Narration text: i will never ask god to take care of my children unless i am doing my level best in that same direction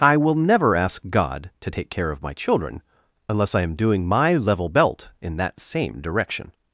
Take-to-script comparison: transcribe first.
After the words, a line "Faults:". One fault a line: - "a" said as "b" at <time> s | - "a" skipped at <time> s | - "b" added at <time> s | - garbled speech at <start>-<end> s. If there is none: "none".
i will never ask god to take care of my children unless i am doing my level belt in that same direction
Faults:
- "best" said as "belt" at 4.7 s